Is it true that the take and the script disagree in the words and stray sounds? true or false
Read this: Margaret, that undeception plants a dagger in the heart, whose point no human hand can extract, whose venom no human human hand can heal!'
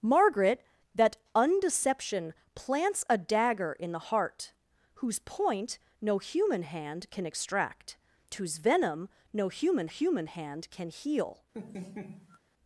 true